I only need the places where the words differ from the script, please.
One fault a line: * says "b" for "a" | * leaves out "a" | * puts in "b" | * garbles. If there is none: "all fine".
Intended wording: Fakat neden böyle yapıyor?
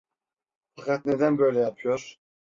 all fine